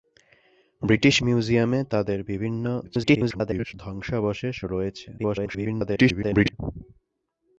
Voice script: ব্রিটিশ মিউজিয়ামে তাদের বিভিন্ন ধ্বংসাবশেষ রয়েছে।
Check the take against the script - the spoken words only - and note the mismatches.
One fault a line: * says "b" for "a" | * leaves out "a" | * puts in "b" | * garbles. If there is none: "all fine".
* garbles
* garbles